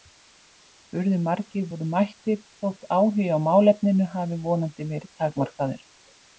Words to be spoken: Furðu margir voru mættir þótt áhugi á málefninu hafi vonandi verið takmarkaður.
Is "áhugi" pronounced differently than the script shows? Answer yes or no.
no